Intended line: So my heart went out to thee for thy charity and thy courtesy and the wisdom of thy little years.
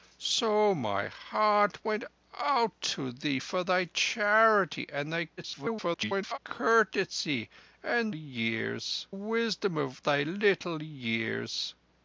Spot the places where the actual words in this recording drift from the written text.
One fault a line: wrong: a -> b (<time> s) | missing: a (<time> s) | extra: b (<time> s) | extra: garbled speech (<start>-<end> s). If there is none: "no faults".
extra: garbled speech (5.4-6.4 s)
wrong: the -> years (8.1 s)